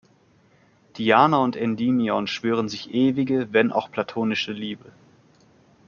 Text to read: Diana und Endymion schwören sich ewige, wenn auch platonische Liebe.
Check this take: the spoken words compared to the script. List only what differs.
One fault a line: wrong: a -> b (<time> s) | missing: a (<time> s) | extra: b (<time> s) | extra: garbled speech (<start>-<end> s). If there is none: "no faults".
no faults